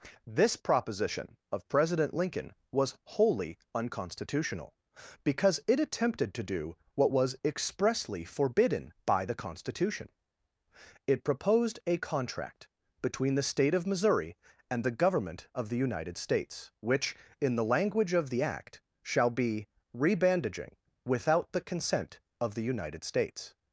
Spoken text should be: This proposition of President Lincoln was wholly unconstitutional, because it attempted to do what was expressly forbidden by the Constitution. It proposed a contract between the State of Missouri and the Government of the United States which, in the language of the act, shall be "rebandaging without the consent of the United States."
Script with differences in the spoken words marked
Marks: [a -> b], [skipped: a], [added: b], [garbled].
This proposition of President Lincoln was wholly unconstitutional, because it attempted to do what was expressly forbidden by the Constitution. It proposed a contract between the State of Missouri and the Government of the United States which, in the language of the act, shall be "rebandaging without the consent of the United States."